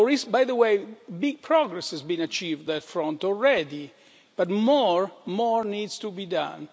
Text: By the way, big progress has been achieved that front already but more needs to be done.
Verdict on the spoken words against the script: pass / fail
pass